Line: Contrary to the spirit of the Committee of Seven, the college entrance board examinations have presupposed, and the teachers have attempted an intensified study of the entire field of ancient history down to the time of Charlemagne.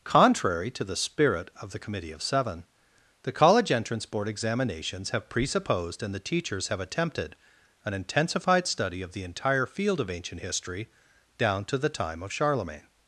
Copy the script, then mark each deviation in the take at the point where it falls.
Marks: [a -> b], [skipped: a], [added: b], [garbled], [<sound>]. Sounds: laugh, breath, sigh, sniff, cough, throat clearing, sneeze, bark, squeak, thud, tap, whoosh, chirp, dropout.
Contrary to the spirit of the Committee of Seven, the college entrance board examinations have presupposed, and the teachers have attempted an intensified study of the entire field of ancient history down to the time of Charlemagne.